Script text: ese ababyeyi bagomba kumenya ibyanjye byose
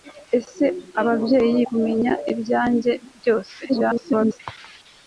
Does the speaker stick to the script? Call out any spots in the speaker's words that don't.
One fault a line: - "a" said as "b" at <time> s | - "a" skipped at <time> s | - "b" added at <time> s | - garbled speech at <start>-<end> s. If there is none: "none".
- "bagomba" skipped at 1.6 s
- garbled speech at 3.7-4.4 s